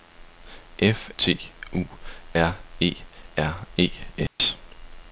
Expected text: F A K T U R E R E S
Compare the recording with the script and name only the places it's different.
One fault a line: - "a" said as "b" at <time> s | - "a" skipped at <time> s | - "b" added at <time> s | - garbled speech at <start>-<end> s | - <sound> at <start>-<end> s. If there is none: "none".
- "A K" skipped at 1.1 s
- dropout at 4.3-4.4 s